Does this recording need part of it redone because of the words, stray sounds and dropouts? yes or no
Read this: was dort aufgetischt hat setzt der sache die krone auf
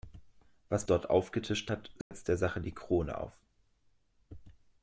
yes